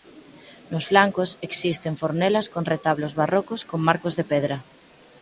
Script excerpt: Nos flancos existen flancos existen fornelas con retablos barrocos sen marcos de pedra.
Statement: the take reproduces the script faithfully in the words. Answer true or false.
false